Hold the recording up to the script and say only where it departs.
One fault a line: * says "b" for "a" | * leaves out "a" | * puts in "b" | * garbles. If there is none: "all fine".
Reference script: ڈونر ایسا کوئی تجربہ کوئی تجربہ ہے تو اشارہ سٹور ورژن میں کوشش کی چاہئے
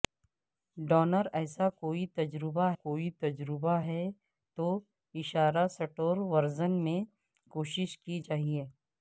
all fine